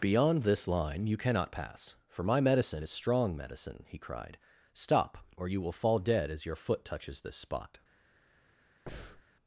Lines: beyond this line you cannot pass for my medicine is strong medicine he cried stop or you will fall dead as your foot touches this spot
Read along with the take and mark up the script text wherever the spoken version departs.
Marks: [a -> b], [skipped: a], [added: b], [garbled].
beyond this line you cannot pass for my medicine is strong medicine he cried stop or you will fall dead as your foot touches this spot